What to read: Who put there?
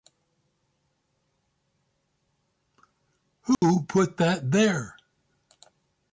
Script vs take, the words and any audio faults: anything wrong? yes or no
yes